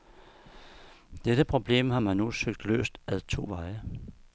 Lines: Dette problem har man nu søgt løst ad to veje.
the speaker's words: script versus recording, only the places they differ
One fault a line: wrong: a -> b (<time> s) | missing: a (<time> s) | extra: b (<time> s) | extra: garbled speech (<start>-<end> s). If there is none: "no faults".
no faults